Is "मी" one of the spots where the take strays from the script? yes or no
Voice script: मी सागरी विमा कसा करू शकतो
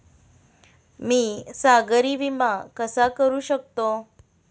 no